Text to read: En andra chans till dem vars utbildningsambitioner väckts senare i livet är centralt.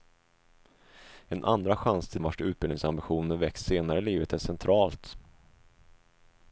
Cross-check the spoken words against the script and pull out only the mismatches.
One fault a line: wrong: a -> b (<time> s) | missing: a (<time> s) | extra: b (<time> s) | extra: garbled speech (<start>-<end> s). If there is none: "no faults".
missing: dem (2.2 s)